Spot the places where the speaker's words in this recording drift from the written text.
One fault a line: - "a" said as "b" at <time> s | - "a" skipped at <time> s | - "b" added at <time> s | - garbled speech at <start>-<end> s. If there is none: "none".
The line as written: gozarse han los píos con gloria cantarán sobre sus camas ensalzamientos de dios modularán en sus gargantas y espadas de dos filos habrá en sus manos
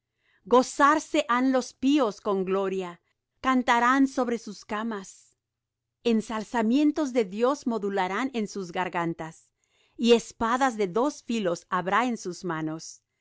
none